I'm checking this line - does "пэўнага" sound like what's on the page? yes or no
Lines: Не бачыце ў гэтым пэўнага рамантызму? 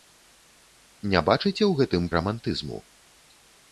no